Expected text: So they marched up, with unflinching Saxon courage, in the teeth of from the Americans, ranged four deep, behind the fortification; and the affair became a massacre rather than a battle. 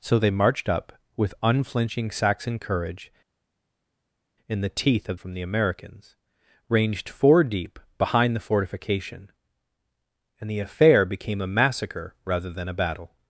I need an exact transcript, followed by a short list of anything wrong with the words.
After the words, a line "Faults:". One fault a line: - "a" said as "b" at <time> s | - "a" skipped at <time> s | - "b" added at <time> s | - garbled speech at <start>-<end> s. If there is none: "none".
So they marched up, with unflinching Saxon courage, in the teeth of from the Americans, ranged four deep, behind the fortification; and the affair became a massacre rather than a battle.
Faults:
none